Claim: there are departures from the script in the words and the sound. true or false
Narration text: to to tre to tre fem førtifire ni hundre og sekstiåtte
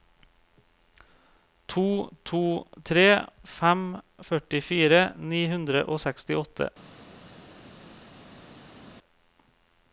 true